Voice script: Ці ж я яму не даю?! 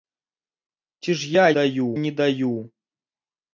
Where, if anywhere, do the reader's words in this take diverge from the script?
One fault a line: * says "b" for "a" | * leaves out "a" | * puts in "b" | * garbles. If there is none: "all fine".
* says "даю" for "яму"